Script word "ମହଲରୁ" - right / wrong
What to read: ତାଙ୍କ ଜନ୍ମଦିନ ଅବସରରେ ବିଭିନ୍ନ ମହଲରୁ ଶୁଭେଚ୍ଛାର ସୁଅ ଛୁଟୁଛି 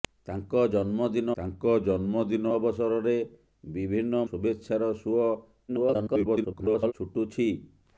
wrong